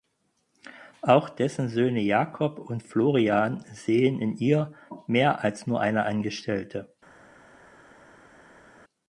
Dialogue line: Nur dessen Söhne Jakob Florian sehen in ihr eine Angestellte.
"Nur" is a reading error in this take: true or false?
true